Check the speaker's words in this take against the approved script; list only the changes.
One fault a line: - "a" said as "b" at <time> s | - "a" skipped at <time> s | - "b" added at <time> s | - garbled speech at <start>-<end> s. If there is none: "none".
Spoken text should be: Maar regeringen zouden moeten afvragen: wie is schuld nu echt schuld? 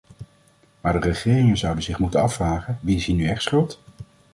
- "de" added at 0.9 s
- "zich" added at 1.8 s
- "schuld" said as "hier" at 3.0 s